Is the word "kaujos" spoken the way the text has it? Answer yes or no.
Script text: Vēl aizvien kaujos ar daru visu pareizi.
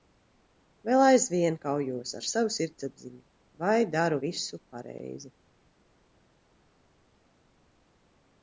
yes